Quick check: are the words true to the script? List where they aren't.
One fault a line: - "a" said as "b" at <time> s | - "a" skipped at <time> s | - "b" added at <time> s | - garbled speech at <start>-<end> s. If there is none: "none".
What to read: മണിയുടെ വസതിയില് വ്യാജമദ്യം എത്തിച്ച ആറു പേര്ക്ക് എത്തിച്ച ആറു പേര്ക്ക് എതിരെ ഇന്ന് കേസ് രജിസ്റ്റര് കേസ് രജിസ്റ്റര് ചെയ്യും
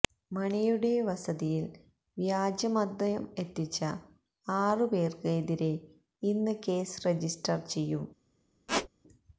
- "എത്തിച്ച ആറു പേര്ക്ക്" skipped at 5.3 s
- "കേസ് രജിസ്റ്റര്" skipped at 7.7 s